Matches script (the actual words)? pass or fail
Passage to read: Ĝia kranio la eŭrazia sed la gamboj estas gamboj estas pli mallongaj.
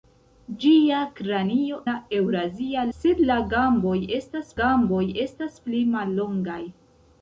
pass